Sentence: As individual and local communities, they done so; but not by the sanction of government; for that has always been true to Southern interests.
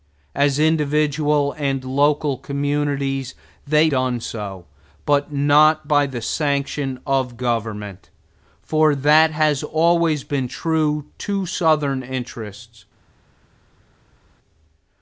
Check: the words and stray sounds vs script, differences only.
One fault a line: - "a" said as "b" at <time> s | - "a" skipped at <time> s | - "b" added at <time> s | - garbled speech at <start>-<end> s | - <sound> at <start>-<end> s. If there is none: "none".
none